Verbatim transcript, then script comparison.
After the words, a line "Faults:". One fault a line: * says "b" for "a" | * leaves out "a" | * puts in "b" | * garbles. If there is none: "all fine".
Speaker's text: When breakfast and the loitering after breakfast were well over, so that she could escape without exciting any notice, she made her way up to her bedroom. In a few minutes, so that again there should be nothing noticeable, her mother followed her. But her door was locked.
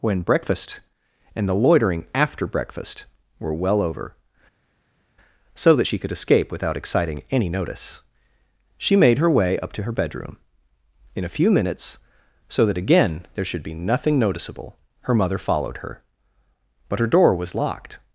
When breakfast and the loitering after breakfast were well over, so that she could escape without exciting any notice, she made her way up to her bedroom. In a few minutes, so that again there should be nothing noticeable, her mother followed her. But her door was locked.
Faults:
all fine